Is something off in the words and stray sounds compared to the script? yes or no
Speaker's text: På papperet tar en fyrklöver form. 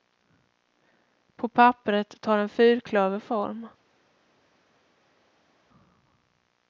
no